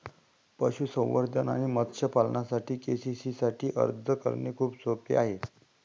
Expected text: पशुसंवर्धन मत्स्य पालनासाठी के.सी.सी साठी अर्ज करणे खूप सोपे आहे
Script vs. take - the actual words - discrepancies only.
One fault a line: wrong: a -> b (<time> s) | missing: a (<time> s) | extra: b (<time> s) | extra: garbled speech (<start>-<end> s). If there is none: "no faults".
extra: आणि (1.5 s)